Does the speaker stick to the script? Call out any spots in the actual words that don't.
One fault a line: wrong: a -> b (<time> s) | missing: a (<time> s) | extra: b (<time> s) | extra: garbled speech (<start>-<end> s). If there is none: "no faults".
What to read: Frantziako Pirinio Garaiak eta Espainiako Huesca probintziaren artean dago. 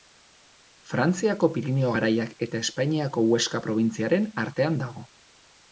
no faults